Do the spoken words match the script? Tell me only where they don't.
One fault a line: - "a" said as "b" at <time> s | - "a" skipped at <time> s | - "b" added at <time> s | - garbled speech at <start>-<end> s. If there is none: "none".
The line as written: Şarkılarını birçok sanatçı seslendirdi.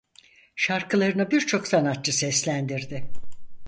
none